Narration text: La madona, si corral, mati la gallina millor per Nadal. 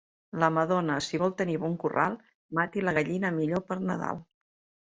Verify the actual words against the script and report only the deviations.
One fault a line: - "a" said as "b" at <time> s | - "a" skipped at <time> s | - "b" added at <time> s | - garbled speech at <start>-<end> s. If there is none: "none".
- "vol tenir bon" added at 1.2 s